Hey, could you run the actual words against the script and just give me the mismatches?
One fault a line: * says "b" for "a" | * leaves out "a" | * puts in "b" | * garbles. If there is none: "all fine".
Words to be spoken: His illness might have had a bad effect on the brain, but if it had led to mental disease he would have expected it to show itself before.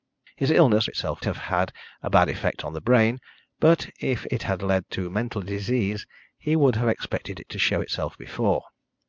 * says "itself" for "might"